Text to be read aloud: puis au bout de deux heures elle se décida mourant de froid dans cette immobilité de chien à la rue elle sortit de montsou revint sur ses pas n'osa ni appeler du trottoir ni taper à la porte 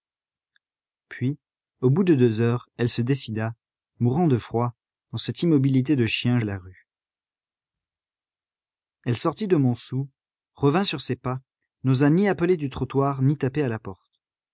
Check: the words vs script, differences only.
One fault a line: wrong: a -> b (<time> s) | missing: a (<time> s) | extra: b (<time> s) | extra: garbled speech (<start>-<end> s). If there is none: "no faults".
no faults